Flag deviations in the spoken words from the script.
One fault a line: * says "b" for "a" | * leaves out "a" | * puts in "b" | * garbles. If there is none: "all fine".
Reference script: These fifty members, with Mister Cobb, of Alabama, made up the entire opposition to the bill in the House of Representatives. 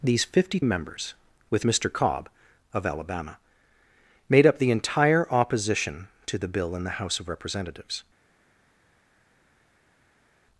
all fine